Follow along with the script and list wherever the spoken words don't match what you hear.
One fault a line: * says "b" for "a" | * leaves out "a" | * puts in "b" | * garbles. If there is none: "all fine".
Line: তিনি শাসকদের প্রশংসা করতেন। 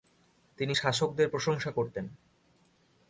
all fine